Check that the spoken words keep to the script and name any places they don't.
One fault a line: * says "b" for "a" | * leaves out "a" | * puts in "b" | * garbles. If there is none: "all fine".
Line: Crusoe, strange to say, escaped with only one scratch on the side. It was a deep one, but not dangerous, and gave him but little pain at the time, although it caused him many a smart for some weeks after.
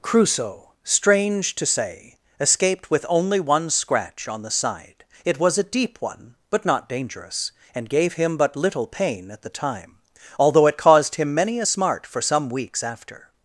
all fine